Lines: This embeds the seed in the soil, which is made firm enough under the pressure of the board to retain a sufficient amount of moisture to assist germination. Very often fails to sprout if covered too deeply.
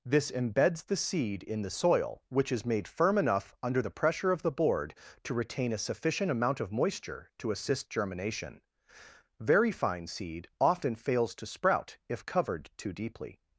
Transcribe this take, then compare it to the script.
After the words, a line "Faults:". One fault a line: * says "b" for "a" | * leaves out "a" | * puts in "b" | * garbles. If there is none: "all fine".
This embeds the seed in the soil, which is made firm enough under the pressure of the board to retain a sufficient amount of moisture to assist germination. Very fine seed often fails to sprout if covered too deeply.
Faults:
* puts in "fine seed"